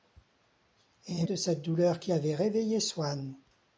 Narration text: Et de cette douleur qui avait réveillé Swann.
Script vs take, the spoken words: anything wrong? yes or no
no